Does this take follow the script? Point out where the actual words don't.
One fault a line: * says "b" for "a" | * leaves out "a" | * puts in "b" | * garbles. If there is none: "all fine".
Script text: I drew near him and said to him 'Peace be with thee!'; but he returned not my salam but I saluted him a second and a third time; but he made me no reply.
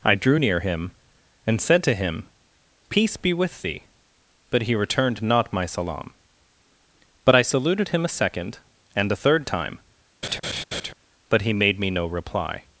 all fine